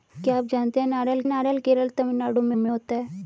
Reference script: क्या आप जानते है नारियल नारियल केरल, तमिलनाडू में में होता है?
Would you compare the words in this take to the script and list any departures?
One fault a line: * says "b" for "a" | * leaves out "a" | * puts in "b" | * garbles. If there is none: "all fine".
all fine